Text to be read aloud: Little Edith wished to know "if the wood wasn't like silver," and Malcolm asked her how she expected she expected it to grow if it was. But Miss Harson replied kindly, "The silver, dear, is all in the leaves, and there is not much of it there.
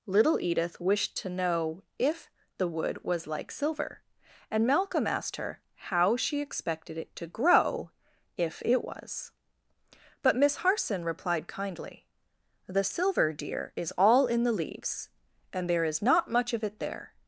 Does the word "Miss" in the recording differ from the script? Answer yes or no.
no